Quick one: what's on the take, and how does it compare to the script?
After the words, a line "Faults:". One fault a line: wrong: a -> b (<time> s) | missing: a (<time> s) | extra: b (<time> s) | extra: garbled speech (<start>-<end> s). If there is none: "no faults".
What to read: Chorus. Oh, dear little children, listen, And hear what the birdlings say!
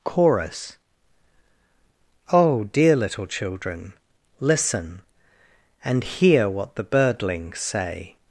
Chorus. Oh, dear little children, listen, And hear what the birdlings say!
Faults:
no faults